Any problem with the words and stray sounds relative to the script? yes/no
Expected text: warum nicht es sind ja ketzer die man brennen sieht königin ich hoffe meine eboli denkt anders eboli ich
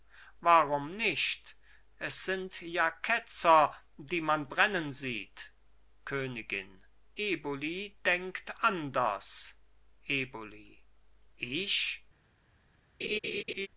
yes